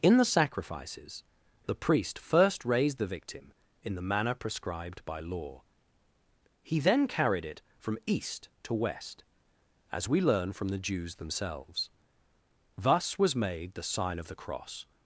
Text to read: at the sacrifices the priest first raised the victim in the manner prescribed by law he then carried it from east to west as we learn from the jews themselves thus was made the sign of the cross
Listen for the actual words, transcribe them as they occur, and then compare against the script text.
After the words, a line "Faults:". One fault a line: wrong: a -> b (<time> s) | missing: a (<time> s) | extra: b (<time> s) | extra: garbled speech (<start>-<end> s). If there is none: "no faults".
in the sacrifices the priest first raised the victim in the manner prescribed by law he then carried it from east to west as we learn from the jews themselves thus was made the sign of the cross
Faults:
wrong: at -> in (0.0 s)